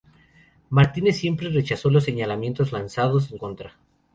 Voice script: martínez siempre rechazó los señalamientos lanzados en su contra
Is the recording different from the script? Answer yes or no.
yes